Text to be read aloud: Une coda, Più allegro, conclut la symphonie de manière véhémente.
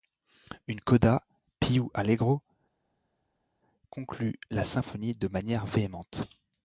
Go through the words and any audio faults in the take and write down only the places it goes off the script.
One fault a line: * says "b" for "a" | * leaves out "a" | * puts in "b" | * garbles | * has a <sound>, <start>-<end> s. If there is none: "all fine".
all fine